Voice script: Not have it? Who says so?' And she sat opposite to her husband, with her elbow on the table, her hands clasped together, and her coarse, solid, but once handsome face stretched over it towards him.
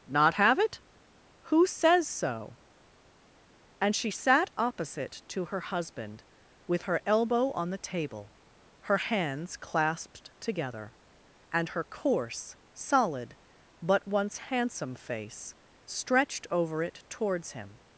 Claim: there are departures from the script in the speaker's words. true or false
false